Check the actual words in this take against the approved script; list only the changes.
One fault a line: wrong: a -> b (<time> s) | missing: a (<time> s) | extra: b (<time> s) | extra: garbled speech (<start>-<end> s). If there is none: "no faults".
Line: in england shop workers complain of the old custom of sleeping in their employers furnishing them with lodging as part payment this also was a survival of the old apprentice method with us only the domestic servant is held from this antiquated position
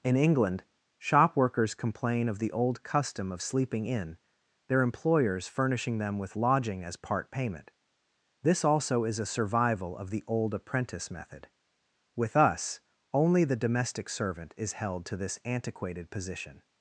wrong: was -> is (9.0 s)
wrong: from -> to (15.1 s)